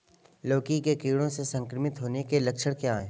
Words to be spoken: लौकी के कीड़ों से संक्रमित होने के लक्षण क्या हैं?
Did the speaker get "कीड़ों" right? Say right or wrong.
right